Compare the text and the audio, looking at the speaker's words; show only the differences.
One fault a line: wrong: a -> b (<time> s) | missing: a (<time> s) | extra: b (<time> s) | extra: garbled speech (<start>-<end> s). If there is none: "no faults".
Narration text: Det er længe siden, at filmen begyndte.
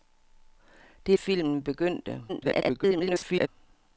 missing: længe siden at (1.2 s)
extra: garbled speech (2.3-3.5 s)